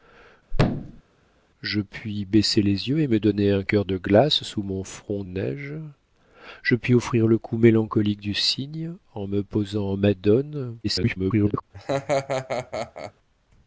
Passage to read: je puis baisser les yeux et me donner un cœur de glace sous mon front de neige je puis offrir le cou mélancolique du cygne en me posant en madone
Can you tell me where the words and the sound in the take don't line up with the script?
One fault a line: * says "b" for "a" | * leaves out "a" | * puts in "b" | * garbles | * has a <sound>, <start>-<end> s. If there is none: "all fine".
* has a thud, 0.5-1.0 s
* leaves out "de"
* garbles
* has a laugh, 11.7-13.1 s